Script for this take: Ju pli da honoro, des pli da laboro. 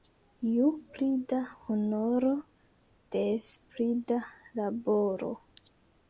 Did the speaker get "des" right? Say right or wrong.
right